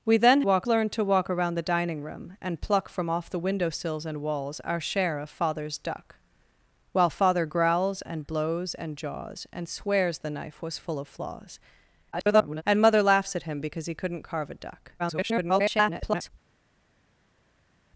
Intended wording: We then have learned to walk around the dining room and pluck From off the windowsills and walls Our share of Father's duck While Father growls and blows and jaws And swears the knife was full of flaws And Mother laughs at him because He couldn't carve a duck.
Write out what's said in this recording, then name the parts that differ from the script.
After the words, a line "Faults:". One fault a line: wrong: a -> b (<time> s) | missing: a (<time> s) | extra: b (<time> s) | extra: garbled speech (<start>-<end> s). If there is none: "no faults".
We then walk learned to walk around the dining room and pluck From off the windowsills and walls Our share of Father's duck While Father growls and blows and jaws And swears the knife was full of flaws [garbled] And Mother laughs at him because He couldn't carve a duck. [garbled]
Faults:
wrong: have -> walk (0.4 s)
extra: garbled speech (12.1-12.6 s)
extra: garbled speech (15.0-16.3 s)